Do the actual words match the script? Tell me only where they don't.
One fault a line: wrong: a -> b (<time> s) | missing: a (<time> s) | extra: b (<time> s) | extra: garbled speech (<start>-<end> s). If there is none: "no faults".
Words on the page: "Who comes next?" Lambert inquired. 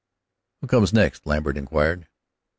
no faults